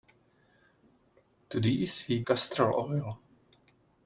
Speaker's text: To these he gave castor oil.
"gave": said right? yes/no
no